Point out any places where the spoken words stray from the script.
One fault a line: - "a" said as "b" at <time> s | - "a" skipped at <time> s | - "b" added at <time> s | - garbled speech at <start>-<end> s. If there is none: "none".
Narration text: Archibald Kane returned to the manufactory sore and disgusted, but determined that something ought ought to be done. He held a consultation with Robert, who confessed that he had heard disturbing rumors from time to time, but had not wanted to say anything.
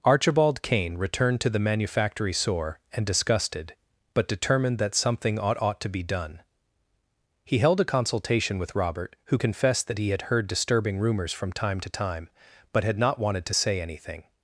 none